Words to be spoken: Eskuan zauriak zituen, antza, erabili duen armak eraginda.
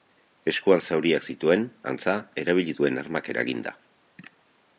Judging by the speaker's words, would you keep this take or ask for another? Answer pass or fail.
pass